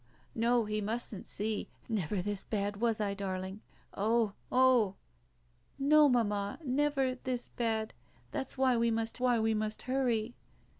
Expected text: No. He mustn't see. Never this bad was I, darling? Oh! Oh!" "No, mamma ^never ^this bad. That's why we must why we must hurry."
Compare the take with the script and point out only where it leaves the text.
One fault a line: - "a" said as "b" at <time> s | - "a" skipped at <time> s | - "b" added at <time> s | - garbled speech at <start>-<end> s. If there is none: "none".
none